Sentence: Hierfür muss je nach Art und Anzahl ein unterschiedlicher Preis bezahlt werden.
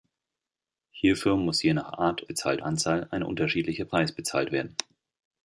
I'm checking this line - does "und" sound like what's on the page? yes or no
no